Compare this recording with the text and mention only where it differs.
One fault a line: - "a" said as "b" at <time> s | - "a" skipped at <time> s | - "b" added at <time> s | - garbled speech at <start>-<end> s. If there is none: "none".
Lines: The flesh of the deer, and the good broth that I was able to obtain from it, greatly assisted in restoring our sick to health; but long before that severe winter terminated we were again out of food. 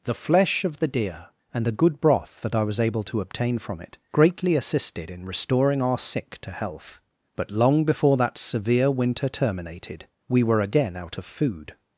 none